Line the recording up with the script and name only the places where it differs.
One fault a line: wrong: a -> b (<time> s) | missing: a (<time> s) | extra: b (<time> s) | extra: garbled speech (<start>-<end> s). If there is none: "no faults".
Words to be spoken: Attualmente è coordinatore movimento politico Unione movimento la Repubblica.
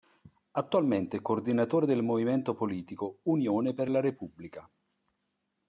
extra: del (1.9 s)
wrong: movimento -> per (3.8 s)